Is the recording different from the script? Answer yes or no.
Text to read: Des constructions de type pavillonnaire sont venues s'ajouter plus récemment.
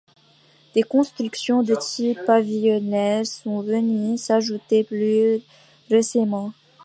no